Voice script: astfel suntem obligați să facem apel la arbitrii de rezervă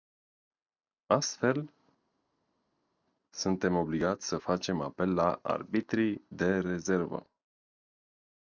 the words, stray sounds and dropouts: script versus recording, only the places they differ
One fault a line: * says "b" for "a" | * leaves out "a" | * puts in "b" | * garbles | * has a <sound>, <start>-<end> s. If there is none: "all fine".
all fine